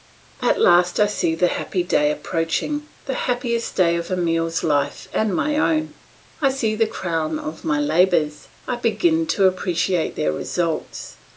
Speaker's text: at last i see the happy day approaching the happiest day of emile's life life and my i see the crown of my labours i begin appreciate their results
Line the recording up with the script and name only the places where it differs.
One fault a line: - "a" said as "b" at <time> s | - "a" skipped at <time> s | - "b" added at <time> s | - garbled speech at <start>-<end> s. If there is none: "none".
- "life" skipped at 5.1 s
- "own" added at 5.6 s
- "to" added at 9.3 s